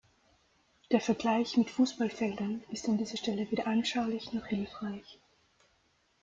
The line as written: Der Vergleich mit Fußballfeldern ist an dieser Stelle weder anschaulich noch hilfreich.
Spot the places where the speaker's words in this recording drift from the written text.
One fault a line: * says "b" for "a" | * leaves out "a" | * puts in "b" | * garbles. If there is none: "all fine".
all fine